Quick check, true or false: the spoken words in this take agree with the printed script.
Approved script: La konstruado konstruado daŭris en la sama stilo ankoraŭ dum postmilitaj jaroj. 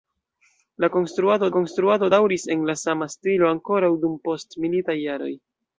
true